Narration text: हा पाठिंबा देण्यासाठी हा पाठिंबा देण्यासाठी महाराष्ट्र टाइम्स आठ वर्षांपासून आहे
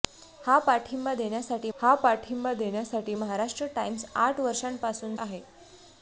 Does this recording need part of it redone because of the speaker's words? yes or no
no